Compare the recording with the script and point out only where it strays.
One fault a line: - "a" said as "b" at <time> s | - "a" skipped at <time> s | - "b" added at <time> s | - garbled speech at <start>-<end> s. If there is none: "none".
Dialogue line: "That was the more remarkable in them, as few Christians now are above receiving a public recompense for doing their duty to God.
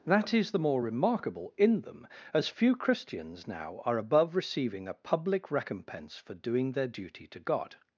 - "was" said as "is" at 0.3 s